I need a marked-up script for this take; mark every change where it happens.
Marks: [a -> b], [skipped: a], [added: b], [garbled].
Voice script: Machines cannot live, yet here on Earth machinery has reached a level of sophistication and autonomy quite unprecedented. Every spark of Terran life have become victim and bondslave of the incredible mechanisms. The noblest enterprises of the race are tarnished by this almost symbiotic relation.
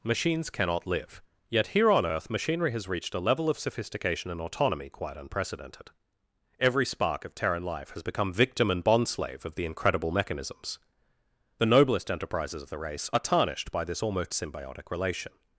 Machines cannot live, yet here on Earth machinery has reached a level of sophistication and autonomy quite unprecedented. Every spark of Terran life [have -> has] become victim and bondslave of the incredible mechanisms. The noblest enterprises of the race are tarnished by this almost symbiotic relation.